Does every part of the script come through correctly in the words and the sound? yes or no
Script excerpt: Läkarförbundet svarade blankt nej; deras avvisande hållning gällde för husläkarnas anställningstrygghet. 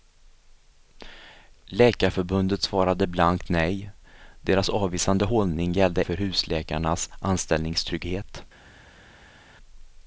yes